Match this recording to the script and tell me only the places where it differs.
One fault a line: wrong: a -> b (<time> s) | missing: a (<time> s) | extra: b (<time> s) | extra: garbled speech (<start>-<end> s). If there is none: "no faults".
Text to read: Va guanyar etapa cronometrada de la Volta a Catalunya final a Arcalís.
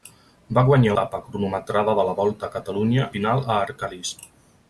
no faults